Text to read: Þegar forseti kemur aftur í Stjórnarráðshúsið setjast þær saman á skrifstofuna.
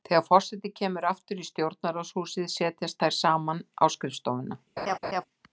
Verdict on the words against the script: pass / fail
pass